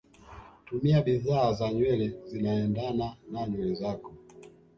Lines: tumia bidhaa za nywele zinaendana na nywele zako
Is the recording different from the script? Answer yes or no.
no